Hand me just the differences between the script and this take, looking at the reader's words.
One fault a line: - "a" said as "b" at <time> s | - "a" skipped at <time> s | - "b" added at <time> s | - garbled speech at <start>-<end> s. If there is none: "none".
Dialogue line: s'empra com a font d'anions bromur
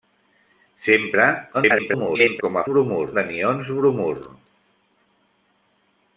- garbled speech at 1.5-2.4 s
- "font" said as "bromur" at 2.7 s